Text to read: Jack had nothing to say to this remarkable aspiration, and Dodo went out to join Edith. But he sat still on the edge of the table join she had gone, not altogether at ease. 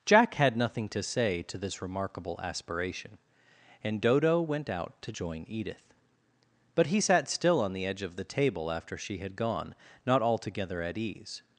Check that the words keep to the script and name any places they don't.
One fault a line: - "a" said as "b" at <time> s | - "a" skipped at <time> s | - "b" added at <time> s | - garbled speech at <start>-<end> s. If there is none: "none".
- "join" said as "after" at 8.7 s